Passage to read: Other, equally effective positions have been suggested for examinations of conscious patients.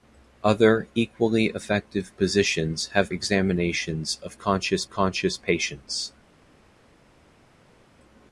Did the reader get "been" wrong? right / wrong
wrong